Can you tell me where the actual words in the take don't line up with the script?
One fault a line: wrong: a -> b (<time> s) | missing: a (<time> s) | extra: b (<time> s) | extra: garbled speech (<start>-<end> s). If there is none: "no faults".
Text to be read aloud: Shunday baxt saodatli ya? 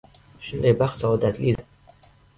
no faults